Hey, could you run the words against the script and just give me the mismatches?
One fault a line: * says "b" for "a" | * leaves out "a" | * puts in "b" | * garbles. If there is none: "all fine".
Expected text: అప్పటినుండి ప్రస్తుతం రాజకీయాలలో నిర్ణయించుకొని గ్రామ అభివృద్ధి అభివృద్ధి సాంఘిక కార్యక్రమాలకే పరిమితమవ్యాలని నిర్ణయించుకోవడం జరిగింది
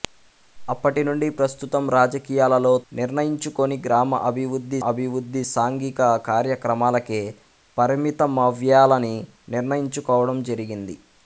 all fine